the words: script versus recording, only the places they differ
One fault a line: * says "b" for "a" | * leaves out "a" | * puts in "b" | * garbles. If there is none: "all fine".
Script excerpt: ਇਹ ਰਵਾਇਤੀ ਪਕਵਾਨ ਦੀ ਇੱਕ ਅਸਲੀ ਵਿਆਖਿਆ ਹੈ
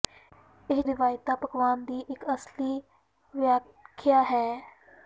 all fine